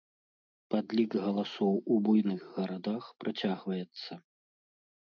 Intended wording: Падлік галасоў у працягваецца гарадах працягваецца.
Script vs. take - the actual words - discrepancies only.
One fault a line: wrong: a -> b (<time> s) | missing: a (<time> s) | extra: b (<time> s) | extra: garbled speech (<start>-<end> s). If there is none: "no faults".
wrong: працягваецца -> буйных (2.1 s)